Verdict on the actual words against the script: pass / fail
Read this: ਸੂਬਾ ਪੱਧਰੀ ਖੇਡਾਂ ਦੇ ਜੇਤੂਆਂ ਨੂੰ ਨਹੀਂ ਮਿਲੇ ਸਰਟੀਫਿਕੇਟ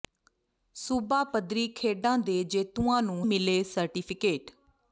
fail